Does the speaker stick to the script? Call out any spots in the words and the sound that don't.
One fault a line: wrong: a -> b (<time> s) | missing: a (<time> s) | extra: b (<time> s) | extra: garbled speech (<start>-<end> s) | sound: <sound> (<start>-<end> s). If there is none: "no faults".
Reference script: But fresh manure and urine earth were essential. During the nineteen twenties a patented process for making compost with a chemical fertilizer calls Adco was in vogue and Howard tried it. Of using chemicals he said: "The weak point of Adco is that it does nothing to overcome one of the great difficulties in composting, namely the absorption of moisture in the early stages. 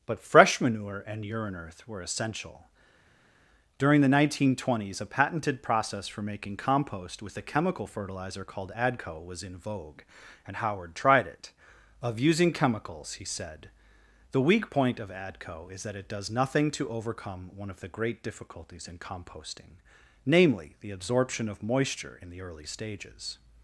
wrong: calls -> called (8.4 s)